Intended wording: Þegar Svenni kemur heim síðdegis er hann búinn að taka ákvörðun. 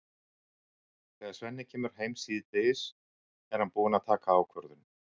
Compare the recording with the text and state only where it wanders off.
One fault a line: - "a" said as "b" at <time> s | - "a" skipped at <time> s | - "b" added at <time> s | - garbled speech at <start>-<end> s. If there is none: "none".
none